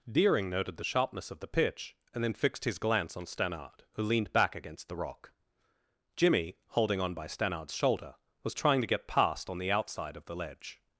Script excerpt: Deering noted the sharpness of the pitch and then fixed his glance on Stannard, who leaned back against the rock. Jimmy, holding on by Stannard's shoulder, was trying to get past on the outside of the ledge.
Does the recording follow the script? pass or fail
pass